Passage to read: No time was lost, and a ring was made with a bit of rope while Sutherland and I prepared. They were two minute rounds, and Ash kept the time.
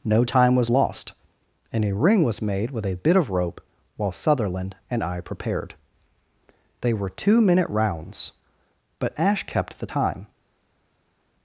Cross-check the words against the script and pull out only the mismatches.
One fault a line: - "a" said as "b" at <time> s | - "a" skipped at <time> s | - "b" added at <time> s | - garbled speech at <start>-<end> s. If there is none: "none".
- "and" said as "but" at 9.0 s